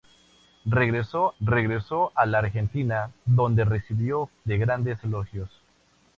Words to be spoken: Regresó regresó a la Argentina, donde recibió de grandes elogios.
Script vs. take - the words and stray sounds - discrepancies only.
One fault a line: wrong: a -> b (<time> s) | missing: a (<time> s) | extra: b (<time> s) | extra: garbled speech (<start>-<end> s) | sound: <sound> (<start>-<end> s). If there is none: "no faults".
no faults